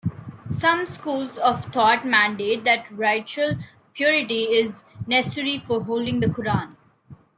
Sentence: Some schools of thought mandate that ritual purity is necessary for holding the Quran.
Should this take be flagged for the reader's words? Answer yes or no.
no